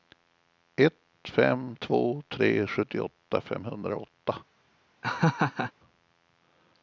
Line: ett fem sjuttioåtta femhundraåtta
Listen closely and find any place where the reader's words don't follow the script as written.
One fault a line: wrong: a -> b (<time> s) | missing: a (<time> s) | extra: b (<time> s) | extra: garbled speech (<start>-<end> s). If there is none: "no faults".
extra: två tre (1.7 s)